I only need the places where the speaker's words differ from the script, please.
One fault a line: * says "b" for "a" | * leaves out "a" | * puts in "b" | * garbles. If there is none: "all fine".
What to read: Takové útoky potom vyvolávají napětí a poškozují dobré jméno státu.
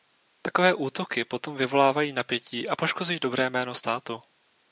all fine